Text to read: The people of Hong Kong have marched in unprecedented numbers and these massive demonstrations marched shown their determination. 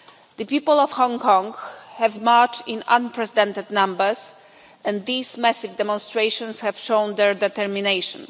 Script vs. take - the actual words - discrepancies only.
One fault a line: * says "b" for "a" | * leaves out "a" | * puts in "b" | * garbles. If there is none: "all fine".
* says "have" for "marched"